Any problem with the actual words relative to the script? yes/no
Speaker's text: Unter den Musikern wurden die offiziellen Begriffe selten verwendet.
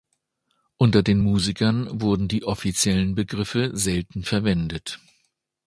no